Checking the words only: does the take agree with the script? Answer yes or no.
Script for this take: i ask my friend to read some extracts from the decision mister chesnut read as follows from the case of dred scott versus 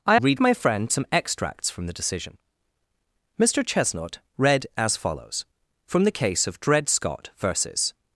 no